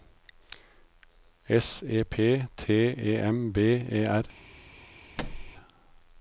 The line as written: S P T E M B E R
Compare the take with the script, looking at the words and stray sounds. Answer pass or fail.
fail